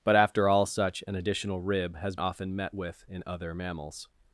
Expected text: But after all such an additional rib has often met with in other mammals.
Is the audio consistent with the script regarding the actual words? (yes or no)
yes